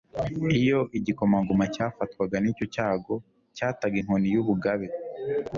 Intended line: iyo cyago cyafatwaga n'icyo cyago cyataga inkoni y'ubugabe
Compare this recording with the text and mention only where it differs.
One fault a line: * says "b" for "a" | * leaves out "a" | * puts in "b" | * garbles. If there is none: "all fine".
* says "igikomangoma" for "cyago"